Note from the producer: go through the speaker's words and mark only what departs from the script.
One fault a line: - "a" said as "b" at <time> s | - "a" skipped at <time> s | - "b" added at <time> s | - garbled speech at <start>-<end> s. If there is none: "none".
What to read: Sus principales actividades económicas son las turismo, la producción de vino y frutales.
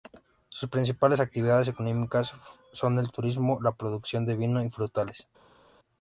- "las" said as "el" at 3.0 s